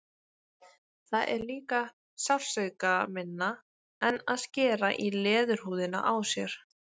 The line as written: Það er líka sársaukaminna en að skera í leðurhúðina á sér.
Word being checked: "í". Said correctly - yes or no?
yes